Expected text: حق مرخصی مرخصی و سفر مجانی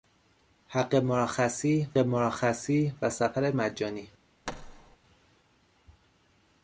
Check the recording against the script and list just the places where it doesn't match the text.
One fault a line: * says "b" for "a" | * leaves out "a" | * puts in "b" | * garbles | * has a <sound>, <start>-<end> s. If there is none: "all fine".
* has a thud, 4.5-5.0 s